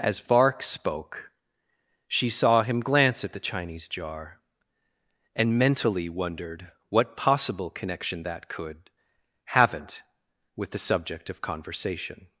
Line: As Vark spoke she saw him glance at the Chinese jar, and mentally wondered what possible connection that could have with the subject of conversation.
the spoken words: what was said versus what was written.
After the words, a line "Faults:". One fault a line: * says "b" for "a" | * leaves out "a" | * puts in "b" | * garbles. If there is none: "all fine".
As Vark spoke she saw him glance at the Chinese jar, and mentally wondered what possible connection that could haven't with the subject of conversation.
Faults:
* says "haven't" for "have"